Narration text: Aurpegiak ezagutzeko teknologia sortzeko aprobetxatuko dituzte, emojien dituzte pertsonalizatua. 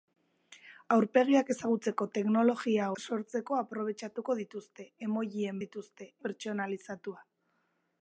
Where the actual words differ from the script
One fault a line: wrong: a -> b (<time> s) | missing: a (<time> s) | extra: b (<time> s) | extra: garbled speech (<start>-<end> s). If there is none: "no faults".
no faults